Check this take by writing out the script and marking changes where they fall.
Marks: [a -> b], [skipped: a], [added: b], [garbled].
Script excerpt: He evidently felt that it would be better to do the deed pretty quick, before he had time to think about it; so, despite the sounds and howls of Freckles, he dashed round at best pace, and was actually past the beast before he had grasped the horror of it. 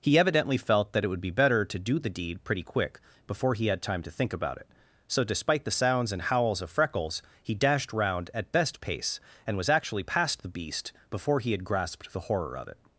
He evidently felt that it would be better to do the deed pretty quick, before he had time to think about it; so, despite the sounds and howls of Freckles, he dashed round at best pace, and was actually past the beast before he had grasped the horror of it.